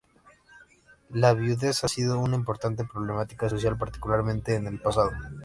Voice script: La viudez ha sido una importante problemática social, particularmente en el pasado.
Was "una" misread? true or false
false